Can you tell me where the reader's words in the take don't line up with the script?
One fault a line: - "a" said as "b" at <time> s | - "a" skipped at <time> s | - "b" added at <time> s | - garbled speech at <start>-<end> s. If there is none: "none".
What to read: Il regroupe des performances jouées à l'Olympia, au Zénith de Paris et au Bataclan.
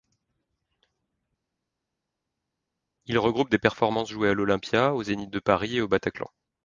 none